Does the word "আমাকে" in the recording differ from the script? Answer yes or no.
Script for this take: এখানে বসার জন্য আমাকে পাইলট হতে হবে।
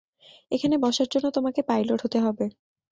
yes